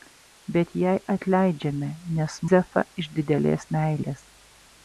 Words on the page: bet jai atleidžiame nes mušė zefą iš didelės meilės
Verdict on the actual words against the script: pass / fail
fail